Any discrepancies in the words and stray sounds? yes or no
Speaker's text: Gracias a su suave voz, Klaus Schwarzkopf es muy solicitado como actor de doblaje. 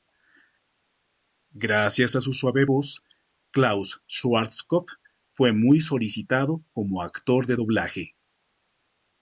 yes